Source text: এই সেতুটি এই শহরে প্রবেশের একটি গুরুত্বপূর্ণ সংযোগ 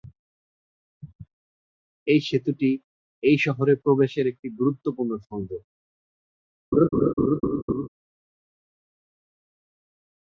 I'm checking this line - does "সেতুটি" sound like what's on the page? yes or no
yes